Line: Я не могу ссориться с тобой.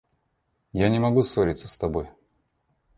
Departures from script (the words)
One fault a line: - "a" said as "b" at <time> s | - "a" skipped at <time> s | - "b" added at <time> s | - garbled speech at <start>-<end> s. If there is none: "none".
none